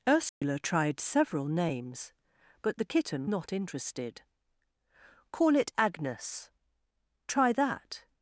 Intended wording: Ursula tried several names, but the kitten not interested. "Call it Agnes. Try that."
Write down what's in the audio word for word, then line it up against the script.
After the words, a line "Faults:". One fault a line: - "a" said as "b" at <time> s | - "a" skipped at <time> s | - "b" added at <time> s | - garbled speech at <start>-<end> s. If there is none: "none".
Ursula tried several names, but the kitten not interested. "Call it Agnes. Try that."
Faults:
none